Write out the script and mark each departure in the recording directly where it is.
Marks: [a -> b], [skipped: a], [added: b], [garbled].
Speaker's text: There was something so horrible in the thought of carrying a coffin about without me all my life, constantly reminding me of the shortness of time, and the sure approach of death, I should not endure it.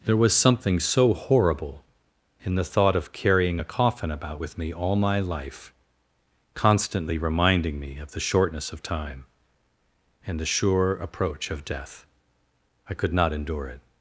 There was something so horrible in the thought of carrying a coffin about [without -> with] me all my life, constantly reminding me of the shortness of time, and the sure approach of death, I [should -> could] not endure it.